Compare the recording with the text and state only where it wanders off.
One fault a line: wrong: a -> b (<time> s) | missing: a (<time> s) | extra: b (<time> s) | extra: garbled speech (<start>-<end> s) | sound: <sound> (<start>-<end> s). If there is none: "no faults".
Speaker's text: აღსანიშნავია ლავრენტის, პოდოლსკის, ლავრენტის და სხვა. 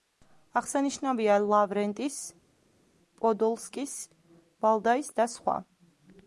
wrong: ლავრენტის -> ვალდაის (4.7 s)